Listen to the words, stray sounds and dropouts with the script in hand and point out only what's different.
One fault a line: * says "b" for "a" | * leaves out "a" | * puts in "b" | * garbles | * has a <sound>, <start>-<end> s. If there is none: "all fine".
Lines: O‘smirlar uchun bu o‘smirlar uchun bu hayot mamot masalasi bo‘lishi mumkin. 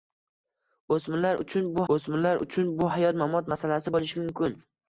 all fine